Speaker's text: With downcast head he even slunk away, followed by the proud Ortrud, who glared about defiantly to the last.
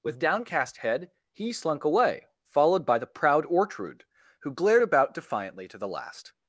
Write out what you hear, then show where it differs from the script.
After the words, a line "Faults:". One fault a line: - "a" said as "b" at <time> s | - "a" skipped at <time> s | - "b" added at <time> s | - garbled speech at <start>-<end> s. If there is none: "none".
With downcast head he slunk away, followed by the proud Ortrud, who glared about defiantly to the last.
Faults:
- "even" skipped at 1.5 s